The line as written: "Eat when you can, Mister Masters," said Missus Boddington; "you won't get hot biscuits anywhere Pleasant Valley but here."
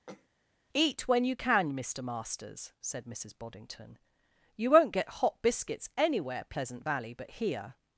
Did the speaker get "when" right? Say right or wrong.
right